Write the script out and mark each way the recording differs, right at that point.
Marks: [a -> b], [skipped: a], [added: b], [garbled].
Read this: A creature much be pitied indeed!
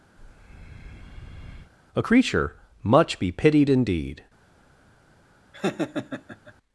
A creature much be pitied indeed!